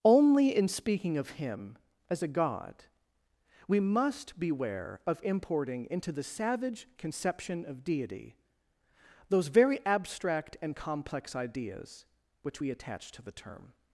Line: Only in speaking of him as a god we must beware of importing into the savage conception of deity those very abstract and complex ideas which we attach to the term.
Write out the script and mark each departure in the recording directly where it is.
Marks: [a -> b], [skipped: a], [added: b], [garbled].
Only in speaking of him as a god we must beware of importing into the savage conception of deity those very abstract and complex ideas which we attach to the term.